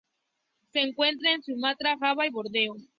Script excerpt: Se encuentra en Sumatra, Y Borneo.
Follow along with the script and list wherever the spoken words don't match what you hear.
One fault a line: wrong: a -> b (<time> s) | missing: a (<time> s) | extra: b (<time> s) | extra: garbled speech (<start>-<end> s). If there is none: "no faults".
extra: Java (2.0 s)